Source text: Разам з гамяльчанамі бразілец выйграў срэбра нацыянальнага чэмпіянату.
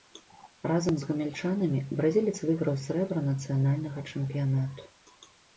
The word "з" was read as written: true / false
true